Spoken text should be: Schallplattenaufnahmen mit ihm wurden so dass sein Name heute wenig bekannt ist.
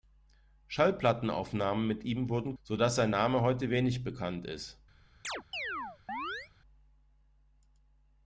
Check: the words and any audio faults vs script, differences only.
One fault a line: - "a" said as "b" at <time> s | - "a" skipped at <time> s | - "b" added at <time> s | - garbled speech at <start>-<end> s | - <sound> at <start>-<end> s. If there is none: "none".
- chirp at 5.2-6.5 s